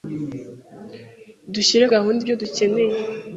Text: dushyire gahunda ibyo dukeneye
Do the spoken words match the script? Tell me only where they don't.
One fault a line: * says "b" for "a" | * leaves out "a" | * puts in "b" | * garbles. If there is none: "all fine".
all fine